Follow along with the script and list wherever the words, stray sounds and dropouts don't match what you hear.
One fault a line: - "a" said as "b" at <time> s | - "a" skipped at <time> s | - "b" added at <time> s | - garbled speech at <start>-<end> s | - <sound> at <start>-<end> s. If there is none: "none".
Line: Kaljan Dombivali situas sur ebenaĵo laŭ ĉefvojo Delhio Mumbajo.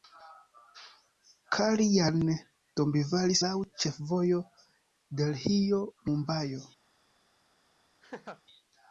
- "situas sur ebenaĵo" skipped at 3.4 s
- laugh at 8.0-8.4 s